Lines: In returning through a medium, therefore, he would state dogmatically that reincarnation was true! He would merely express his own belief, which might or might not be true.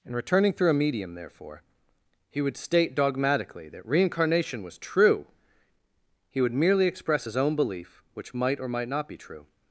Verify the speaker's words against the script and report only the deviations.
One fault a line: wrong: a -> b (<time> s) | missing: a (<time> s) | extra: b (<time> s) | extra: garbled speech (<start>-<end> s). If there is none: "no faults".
no faults